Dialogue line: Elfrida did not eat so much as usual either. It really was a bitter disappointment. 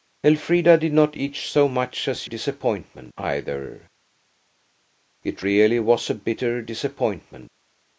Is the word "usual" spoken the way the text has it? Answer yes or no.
no